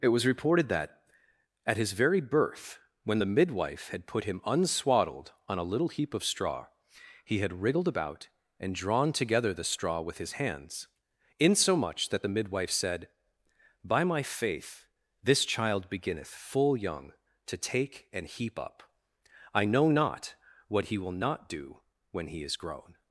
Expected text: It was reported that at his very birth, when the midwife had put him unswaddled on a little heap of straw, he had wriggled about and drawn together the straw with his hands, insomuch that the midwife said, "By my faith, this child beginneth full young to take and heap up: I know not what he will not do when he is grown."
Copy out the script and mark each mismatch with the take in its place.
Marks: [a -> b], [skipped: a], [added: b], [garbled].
It was reported that at his very birth, when the midwife had put him unswaddled on a little heap of straw, he had wriggled about and drawn together the straw with his hands, insomuch that the midwife said, "By my faith, this child beginneth full young to take and heap up: I know not what he will not do when he is grown."